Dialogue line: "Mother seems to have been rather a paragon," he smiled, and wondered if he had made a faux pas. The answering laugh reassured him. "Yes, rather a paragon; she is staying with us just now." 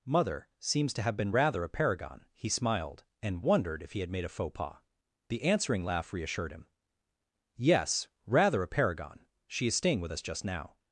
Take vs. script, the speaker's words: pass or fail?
pass